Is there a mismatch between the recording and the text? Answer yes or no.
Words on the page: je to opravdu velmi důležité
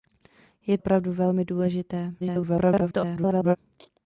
yes